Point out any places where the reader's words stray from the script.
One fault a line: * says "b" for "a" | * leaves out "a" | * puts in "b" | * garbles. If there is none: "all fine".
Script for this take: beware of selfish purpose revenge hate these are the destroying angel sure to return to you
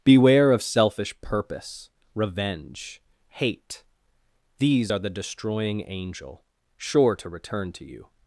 all fine